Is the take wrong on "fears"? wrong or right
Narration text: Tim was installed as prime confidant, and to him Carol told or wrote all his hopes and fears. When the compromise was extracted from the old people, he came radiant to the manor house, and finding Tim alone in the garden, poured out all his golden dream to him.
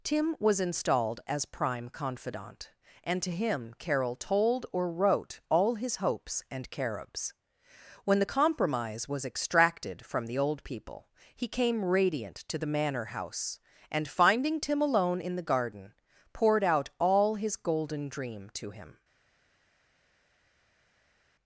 wrong